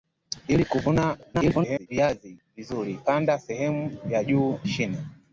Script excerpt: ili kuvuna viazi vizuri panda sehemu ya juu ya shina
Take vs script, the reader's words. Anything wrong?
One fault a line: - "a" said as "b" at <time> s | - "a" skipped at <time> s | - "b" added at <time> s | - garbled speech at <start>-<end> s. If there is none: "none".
- garbled speech at 1.3-1.9 s
- "ya" skipped at 4.6 s